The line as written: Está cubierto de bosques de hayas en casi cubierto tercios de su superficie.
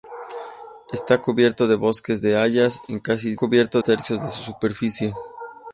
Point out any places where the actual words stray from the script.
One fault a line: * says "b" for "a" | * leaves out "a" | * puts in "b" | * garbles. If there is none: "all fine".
all fine